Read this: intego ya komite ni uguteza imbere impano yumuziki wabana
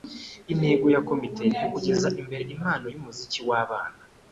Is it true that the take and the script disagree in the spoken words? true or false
false